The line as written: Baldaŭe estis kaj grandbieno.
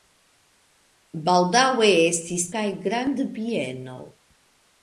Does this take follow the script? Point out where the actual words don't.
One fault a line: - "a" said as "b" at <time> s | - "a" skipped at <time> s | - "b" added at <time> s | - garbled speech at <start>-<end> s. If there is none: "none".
none